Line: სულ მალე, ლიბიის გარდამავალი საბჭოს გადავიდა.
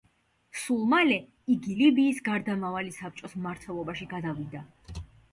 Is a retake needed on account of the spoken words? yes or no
yes